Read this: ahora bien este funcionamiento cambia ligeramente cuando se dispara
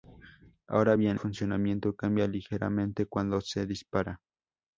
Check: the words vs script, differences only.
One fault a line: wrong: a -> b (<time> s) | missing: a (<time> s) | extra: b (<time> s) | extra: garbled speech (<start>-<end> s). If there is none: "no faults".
missing: este (1.2 s)